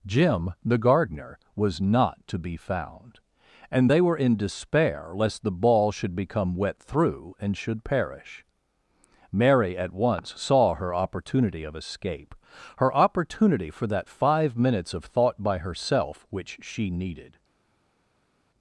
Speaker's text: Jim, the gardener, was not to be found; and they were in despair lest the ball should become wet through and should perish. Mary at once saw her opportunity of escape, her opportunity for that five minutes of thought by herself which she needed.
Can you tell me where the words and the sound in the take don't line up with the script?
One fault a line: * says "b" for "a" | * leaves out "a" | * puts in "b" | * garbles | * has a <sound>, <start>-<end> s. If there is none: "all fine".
all fine